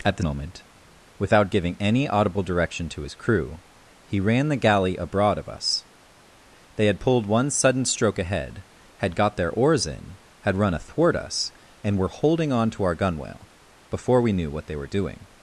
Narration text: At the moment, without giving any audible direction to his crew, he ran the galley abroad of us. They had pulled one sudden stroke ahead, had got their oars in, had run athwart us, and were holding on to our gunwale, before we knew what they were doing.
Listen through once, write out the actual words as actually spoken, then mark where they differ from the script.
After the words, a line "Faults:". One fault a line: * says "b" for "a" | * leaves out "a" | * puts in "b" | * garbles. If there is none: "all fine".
At the moment, without giving any audible direction to his crew, he ran the galley abroad of us. They had pulled one sudden stroke ahead, had got their oars in, had run athwart us, and were holding on to our gunwale, before we knew what they were doing.
Faults:
all fine